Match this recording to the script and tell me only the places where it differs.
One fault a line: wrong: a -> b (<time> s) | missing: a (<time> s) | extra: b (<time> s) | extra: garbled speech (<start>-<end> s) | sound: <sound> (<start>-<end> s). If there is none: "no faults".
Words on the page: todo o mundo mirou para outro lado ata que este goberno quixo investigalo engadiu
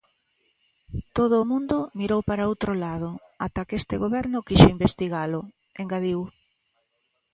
no faults